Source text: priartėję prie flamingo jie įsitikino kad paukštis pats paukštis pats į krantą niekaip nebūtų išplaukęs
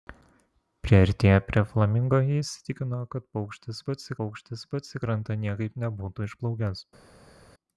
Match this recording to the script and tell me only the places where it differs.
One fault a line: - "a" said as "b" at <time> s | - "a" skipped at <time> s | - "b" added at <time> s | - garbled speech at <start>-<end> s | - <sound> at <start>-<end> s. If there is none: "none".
none